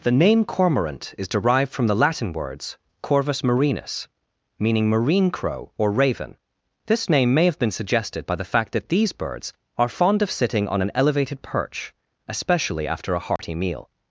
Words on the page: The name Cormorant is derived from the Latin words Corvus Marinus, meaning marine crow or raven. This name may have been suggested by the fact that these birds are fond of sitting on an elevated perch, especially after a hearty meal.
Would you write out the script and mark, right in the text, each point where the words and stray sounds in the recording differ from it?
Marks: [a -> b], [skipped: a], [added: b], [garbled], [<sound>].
The name Cormorant is derived from the Latin words Corvus Marinus, meaning marine crow or raven. This name may have been suggested by the fact that these birds are fond of sitting on an elevated perch, especially after a hearty [dropout] meal.